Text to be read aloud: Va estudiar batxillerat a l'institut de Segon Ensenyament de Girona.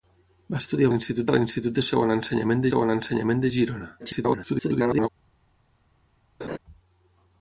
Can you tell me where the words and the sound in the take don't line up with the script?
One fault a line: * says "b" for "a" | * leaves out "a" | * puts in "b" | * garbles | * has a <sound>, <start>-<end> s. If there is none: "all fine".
* says "l'institut" for "batxillerat"
* puts in "Segon Ensenyament"
* garbles
* has a laugh, 6.4-6.6 s